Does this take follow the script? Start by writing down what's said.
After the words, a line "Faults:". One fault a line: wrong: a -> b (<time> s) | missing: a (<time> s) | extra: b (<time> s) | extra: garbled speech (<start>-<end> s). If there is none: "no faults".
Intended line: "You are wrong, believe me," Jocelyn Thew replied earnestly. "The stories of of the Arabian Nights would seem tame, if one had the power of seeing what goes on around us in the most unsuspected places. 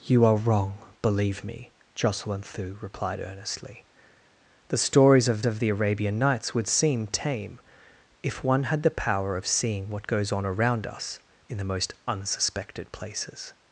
"You are wrong, believe me," Jocelyn Thew replied earnestly. "The stories of of the Arabian Nights would seem tame, if one had the power of seeing what goes on around us in the most unsuspected places.
Faults:
no faults